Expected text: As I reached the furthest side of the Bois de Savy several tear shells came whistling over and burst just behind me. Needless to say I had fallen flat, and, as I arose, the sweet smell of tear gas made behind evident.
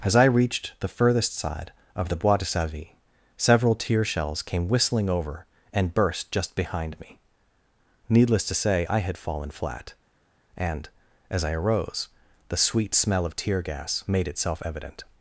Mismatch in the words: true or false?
true